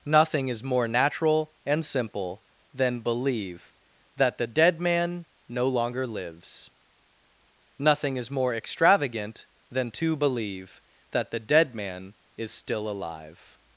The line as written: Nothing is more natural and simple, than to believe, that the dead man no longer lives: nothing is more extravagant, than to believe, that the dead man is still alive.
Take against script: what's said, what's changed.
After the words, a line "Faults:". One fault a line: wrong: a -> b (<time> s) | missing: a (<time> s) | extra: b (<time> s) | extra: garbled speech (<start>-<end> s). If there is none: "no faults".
Nothing is more natural and simple, than believe, that the dead man no longer lives: nothing is more extravagant, than to believe, that the dead man is still alive.
Faults:
missing: to (3.0 s)